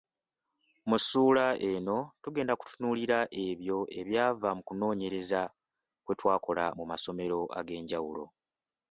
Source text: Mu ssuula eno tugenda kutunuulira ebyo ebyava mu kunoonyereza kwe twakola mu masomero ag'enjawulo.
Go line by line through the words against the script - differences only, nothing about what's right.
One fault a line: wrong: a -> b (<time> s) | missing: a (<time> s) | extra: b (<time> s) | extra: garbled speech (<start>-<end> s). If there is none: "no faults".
no faults